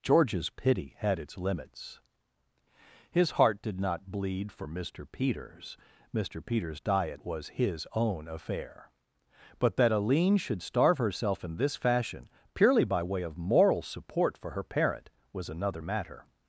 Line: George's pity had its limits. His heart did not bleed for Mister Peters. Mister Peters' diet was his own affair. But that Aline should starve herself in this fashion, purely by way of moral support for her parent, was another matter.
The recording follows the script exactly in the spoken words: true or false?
true